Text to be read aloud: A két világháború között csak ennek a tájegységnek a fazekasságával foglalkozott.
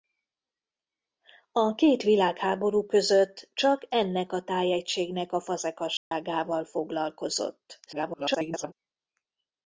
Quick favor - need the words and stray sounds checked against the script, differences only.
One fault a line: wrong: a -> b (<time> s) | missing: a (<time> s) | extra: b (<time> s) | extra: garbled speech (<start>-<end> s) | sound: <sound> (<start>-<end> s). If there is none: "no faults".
sound: dropout (6.0-6.1 s)
extra: garbled speech (7.9-8.7 s)